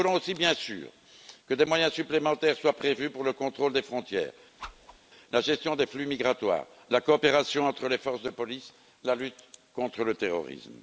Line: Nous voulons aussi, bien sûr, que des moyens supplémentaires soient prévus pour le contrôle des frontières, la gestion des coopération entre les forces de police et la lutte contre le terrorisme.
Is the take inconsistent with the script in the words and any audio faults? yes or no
yes